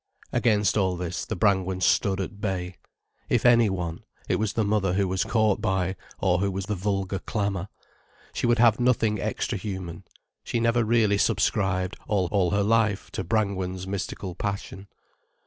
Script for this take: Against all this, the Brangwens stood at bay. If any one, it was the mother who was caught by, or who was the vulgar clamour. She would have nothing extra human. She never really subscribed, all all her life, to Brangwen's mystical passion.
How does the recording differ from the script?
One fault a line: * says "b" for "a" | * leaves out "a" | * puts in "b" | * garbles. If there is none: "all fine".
all fine